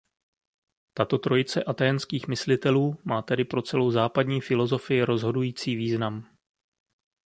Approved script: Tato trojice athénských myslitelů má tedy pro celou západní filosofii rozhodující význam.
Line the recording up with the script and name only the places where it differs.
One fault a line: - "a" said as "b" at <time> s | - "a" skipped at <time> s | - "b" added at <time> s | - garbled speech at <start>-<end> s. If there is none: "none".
none